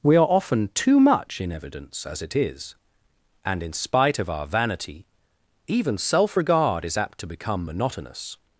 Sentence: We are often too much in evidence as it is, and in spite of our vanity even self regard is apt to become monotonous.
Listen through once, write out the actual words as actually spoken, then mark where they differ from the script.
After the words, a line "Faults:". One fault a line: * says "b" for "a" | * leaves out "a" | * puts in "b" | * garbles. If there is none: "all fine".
We are often too much in evidence as it is, and in spite of our vanity even self regard is apt to become monotonous.
Faults:
all fine